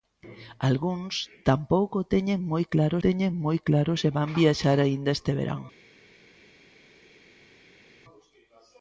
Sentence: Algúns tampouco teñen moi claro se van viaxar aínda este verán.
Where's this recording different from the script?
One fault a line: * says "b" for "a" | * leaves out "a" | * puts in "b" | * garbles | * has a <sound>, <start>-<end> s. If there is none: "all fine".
* puts in "teñen moi claro"